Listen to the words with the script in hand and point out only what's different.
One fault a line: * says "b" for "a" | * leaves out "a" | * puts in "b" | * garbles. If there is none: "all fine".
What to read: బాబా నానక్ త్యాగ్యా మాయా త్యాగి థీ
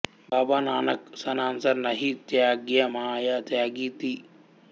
* puts in "సన్సార్ నహీ"